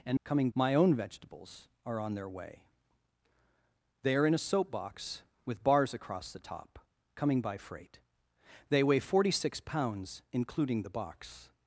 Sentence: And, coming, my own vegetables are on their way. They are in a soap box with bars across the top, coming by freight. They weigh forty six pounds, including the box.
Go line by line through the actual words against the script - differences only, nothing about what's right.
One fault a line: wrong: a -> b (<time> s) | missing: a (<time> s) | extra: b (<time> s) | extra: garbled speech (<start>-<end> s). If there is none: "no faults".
no faults